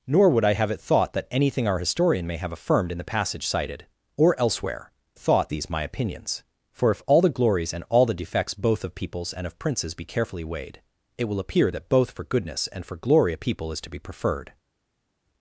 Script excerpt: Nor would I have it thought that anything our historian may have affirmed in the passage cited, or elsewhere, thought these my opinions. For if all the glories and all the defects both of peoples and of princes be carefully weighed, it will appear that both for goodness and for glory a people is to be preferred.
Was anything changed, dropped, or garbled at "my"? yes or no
no